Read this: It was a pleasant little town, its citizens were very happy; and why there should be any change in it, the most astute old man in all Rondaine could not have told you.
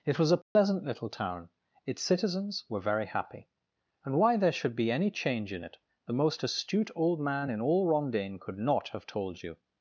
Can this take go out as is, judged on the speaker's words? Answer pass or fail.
pass